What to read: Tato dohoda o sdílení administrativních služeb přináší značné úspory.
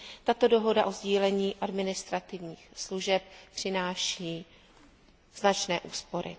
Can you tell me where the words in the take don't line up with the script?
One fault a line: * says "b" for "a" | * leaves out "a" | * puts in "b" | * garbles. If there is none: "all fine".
all fine